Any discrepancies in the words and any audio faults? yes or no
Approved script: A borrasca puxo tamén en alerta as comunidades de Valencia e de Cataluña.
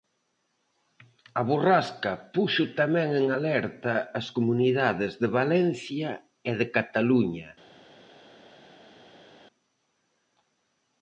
no